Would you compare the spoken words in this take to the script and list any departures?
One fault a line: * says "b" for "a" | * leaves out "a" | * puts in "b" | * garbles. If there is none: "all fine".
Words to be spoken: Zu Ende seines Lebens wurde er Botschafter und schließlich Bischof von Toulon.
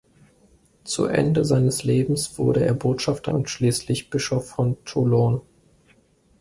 all fine